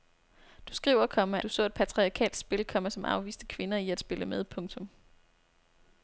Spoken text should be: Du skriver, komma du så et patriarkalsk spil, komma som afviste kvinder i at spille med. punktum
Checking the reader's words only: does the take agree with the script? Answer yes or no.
yes